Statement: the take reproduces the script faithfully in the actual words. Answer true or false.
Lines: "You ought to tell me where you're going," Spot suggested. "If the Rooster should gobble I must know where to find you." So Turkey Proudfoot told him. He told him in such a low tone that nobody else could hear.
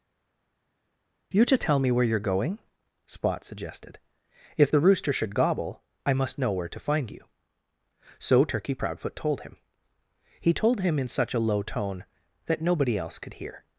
false